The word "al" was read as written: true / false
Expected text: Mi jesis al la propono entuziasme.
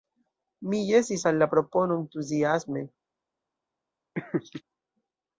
true